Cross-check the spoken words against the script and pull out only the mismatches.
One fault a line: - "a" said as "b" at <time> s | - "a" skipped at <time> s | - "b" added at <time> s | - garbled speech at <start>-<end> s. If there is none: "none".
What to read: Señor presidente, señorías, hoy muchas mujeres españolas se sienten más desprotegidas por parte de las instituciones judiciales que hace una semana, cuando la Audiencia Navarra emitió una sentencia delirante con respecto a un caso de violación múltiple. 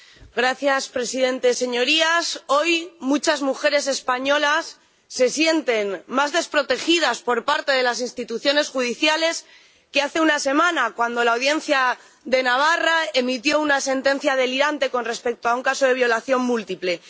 - "de" added at 12.2 s